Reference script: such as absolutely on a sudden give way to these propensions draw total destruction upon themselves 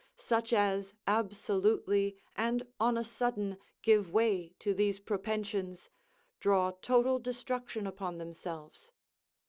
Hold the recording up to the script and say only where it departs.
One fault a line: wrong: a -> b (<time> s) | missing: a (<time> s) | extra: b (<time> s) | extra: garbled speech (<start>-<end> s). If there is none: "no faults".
extra: and (2.4 s)